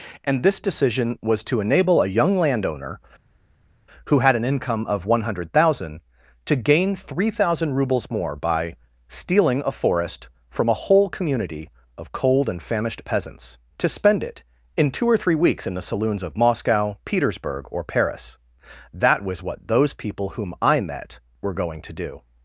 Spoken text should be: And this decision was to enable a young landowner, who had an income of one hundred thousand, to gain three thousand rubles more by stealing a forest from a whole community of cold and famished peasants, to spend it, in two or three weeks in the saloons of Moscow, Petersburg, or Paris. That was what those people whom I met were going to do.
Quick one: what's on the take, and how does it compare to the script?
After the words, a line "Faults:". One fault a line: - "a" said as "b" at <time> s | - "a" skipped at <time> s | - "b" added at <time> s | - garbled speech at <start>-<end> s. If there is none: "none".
And this decision was to enable a young landowner, who had an income of one hundred thousand, to gain three thousand rubles more by stealing a forest from a whole community of cold and famished peasants, to spend it, in two or three weeks in the saloons of Moscow, Petersburg, or Paris. That was what those people whom I met were going to do.
Faults:
none